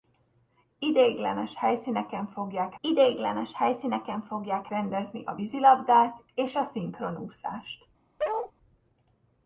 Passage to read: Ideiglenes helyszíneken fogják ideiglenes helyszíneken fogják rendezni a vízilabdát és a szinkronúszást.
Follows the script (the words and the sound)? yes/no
no